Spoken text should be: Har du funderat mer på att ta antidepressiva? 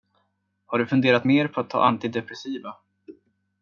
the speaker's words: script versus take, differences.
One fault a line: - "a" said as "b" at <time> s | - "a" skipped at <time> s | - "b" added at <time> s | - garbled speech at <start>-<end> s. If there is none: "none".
none